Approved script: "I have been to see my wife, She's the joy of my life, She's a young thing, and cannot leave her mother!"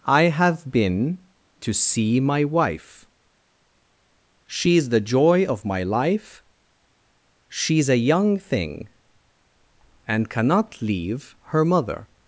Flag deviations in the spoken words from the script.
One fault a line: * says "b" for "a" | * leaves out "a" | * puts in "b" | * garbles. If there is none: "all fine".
all fine